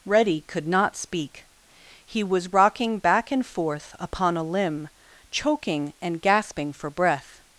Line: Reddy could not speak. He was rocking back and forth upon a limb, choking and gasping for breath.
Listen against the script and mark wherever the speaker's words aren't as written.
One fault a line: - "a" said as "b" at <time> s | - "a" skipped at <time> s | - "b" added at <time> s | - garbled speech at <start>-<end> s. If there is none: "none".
none